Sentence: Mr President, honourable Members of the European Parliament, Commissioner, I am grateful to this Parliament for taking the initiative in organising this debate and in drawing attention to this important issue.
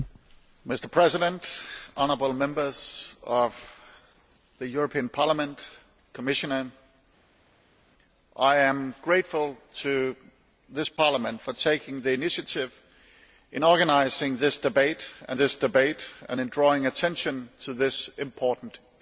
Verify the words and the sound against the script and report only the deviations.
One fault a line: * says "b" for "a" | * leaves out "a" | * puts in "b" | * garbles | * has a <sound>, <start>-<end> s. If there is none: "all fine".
* puts in "this debate and"